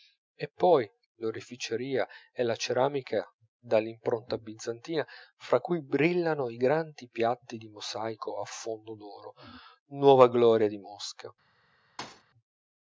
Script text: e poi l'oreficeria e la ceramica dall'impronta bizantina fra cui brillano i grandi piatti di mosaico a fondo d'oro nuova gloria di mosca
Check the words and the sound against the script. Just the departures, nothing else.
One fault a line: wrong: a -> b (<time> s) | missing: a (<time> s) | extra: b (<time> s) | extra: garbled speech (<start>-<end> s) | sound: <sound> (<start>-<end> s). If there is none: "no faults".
sound: thud (12.0-12.2 s)